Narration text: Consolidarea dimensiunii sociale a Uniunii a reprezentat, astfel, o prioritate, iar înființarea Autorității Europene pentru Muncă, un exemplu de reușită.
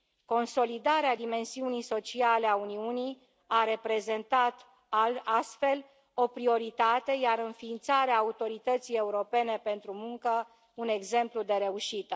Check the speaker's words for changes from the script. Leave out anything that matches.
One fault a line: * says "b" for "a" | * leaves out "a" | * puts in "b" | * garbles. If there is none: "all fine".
all fine